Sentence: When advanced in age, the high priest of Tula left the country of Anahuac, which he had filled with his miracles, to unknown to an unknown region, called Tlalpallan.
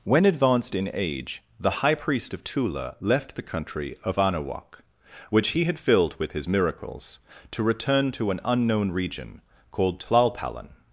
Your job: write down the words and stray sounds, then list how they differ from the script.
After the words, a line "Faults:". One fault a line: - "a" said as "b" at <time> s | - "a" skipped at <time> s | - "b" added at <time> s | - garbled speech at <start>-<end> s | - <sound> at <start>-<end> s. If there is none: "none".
When advanced in age, the high priest of Tula left the country of Anahuac, which he had filled with his miracles, to return to an unknown region, called Tlalpallan.
Faults:
- "unknown" said as "return" at 7.6 s